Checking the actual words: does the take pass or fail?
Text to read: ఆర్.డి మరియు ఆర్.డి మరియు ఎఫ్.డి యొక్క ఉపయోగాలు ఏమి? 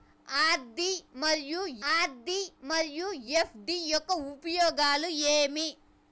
pass